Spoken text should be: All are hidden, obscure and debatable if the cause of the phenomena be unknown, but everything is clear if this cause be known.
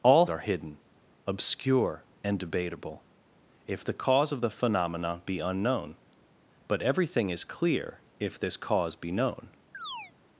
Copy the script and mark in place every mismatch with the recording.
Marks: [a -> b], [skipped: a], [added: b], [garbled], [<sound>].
All are hidden, obscure and debatable if the cause of the phenomena be unknown, but everything is clear if this cause be known. [chirp]